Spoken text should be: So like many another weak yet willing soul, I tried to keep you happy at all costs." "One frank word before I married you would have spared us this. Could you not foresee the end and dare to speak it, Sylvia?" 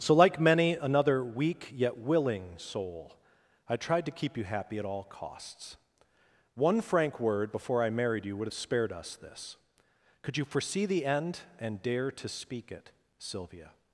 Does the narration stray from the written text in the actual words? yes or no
yes